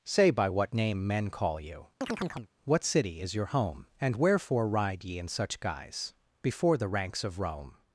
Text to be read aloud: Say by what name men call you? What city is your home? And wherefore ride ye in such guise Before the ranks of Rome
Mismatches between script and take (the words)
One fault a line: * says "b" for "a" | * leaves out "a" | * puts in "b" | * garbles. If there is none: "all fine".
all fine